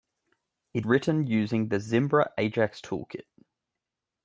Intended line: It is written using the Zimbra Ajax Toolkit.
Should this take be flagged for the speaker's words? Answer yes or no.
yes